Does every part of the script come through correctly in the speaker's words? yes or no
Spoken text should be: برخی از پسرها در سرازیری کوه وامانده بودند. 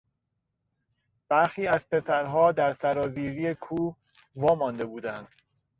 yes